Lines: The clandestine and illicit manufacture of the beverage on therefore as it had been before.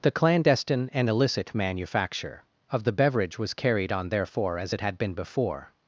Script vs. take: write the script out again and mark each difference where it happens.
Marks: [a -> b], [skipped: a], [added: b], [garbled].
The clandestine and illicit manufacture of the beverage [added: was carried] on therefore as it had been before.